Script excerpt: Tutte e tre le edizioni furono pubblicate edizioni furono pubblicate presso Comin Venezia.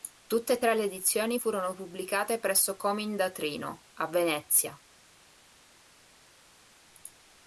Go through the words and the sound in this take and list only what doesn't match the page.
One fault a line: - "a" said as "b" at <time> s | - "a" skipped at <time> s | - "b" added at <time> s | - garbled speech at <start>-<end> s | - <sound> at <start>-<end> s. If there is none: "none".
- "edizioni furono pubblicate presso Comin" said as "presso Comin da Trino a" at 2.4 s